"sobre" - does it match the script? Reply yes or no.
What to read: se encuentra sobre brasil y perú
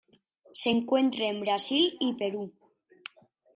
no